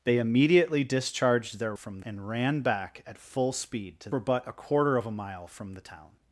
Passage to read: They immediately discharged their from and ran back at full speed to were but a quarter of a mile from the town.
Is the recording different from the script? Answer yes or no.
no